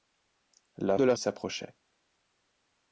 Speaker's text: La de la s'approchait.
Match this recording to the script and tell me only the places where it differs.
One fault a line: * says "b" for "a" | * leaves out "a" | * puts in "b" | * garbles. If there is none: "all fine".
all fine